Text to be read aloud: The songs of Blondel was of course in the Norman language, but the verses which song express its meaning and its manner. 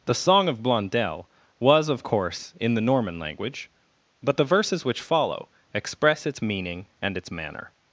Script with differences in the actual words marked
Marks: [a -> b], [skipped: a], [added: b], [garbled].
The [songs -> song] of Blondel was of course in the Norman language, but the verses which [song -> follow] express its meaning and its manner.